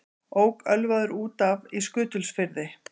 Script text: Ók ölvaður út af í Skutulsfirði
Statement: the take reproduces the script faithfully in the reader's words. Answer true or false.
true